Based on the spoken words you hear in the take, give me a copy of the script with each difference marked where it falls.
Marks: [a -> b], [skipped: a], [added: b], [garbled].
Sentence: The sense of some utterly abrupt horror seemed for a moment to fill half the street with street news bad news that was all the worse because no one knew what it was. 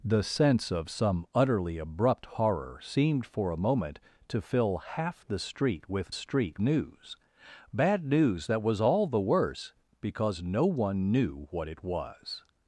The sense of some utterly abrupt horror seemed for a moment to fill half the street with street news bad news that was all the worse because no one knew what it was.